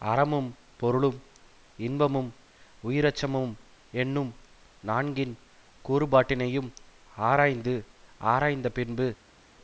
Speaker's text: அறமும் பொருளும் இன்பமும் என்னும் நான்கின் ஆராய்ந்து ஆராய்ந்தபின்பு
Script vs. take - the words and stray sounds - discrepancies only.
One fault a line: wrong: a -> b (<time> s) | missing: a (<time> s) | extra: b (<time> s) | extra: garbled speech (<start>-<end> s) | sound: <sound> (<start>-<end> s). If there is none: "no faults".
extra: உயிரச்சமும் (2.8 s)
extra: கூறுபாட்டினையும் (5.8 s)